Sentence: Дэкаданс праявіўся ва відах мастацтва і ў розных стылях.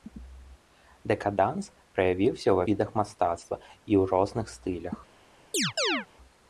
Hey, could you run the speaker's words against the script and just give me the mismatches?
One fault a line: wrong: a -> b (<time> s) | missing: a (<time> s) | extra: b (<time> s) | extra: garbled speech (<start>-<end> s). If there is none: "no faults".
no faults